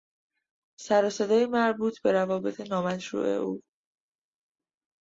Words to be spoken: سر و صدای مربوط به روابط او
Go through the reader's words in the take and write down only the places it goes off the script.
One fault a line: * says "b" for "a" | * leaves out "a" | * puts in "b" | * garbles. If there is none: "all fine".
* puts in "نامشروع"